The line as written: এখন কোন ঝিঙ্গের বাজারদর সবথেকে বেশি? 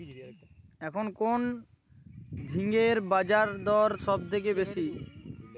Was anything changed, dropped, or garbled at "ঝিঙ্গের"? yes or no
no